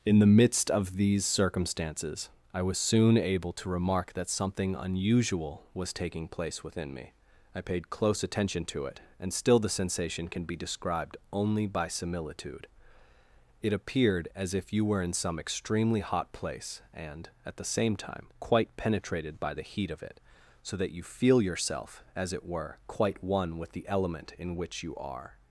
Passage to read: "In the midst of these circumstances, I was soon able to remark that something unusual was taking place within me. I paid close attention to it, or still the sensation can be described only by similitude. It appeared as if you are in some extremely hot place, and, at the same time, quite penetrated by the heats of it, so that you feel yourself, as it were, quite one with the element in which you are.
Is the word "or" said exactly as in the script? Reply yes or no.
no